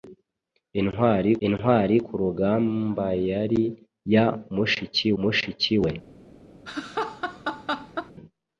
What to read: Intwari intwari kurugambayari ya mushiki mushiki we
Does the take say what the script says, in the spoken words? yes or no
yes